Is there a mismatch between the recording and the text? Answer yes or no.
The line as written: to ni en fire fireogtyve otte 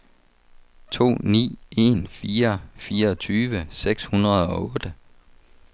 yes